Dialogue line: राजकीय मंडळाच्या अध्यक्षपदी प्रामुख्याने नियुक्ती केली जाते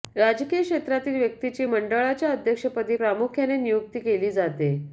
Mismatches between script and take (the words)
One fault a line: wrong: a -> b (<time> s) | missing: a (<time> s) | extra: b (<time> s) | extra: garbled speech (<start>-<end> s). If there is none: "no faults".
extra: क्षेत्रातील व्यक्तीची (0.6 s)